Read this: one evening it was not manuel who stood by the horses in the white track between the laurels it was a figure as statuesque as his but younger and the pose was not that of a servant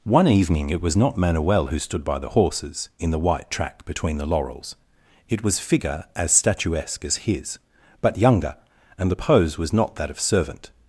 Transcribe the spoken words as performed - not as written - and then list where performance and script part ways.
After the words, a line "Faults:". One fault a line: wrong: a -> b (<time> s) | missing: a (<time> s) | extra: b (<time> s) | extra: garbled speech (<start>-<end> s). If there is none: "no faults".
one evening it was not manuel who stood by the horses in the white track between the laurels it was figure as statuesque as his but younger and the pose was not that of servant
Faults:
missing: a (5.6 s)
missing: a (10.2 s)